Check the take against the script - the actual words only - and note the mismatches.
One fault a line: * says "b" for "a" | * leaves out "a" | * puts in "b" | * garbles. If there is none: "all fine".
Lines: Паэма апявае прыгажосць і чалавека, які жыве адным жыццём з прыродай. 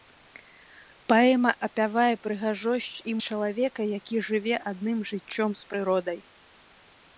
all fine